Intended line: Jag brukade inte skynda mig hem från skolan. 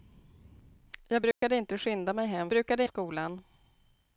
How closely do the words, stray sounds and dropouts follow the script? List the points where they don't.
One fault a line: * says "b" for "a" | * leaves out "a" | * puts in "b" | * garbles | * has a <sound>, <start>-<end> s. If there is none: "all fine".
* has a dropout, 1.3-1.4 s
* says "brukade" for "från"